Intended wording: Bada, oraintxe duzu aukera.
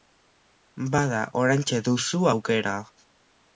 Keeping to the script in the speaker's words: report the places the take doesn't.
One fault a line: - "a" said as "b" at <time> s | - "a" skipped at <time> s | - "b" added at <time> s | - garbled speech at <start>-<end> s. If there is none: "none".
none